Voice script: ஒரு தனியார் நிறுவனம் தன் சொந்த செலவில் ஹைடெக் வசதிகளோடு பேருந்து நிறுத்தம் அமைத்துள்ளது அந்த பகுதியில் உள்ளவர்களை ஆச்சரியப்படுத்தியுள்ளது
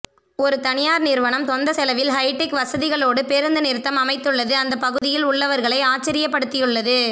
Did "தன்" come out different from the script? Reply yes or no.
yes